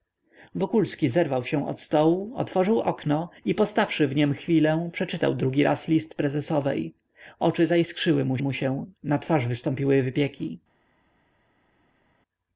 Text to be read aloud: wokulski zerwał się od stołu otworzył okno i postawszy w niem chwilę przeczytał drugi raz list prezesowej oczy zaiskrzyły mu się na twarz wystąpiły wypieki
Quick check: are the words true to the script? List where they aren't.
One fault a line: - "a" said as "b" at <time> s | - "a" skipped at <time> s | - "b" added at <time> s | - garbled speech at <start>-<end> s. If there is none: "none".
- "mu" added at 8.4 s